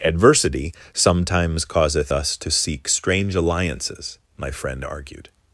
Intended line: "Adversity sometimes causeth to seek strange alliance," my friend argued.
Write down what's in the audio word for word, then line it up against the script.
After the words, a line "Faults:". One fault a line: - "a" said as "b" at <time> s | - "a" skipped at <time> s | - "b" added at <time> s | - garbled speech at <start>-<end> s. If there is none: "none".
"Adversity sometimes causeth us to seek strange alliances," my friend argued.
Faults:
- "us" added at 2.1 s
- "alliance" said as "alliances" at 3.4 s